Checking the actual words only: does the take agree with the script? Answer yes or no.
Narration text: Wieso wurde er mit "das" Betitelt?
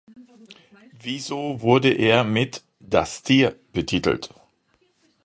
no